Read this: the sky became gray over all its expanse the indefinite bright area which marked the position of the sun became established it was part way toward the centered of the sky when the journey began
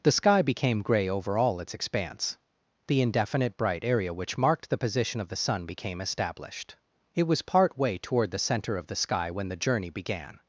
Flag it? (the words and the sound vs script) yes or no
yes